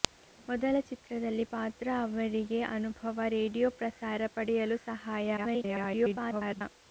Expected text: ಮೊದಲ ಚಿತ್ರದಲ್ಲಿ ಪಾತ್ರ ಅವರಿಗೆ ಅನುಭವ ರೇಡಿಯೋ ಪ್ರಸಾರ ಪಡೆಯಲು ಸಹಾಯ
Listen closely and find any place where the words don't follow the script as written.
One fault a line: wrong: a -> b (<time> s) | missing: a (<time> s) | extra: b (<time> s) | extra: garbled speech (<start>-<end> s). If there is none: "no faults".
extra: garbled speech (5.4-6.6 s)